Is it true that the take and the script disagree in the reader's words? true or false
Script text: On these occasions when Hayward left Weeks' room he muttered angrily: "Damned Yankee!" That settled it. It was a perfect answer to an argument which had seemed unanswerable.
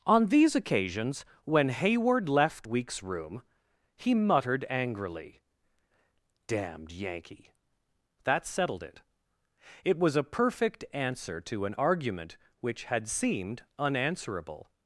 false